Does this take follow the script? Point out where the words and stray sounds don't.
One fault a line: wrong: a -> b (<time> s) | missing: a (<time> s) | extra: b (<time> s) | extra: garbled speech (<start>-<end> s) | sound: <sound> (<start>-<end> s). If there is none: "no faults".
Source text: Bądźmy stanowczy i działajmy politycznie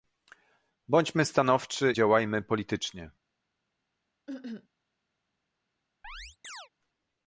missing: i (1.9 s)
sound: cough (4.3-4.7 s)
sound: chirp (6.0-6.7 s)